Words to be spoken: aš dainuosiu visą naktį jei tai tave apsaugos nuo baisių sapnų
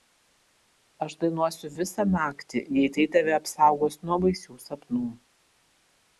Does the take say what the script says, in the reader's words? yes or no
yes